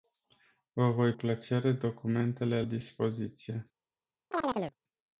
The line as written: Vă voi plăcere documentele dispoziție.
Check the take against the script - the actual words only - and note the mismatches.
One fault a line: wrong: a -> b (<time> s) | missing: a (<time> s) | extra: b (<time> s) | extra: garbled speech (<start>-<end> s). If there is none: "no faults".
no faults